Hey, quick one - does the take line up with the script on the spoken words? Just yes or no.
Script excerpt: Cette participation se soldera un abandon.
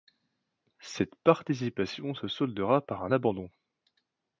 no